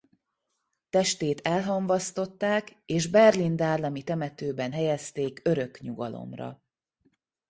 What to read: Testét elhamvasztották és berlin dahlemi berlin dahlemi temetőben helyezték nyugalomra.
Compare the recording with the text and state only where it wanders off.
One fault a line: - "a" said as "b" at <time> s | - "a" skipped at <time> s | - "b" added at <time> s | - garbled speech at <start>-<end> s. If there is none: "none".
- "berlin dahlemi" skipped at 4.0 s
- "örök" added at 5.4 s